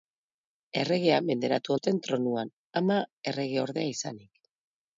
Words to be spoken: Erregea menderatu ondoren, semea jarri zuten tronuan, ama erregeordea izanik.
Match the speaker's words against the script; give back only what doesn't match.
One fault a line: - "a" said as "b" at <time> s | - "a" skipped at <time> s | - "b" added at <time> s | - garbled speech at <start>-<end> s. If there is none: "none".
- "ondoren semea jarri" skipped at 1.8 s